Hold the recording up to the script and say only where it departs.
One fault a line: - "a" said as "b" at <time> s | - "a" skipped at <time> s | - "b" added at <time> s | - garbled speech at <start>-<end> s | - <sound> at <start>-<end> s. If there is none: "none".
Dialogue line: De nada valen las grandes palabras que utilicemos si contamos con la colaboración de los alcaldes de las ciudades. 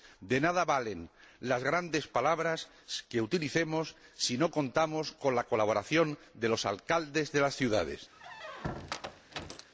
- "no" added at 4.4 s
- squeak at 8.1-9.7 s